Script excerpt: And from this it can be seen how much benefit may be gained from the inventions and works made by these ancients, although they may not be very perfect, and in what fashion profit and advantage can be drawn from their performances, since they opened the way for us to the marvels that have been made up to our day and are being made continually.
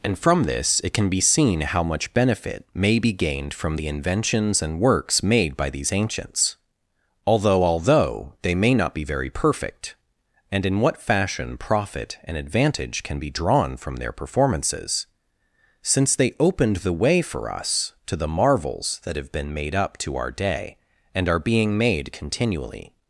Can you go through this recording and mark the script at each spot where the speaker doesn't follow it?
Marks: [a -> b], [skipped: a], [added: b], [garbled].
And from this it can be seen how much benefit may be gained from the inventions and works made by these ancients, although [added: although] they may not be very perfect, and in what fashion profit and advantage can be drawn from their performances, since they opened the way for us to the marvels that have been made up to our day and are being made continually.